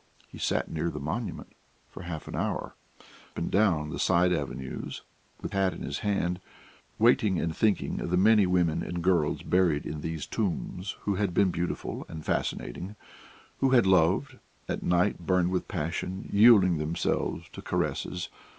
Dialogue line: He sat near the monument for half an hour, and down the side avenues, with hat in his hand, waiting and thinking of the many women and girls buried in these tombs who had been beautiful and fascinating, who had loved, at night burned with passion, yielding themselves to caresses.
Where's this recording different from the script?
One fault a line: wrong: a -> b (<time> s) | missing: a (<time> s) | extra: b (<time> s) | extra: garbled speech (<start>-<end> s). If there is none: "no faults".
no faults